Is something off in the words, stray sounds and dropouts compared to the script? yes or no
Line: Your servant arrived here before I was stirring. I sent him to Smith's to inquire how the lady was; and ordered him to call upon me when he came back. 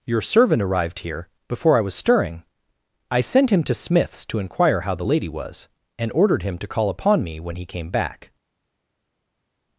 no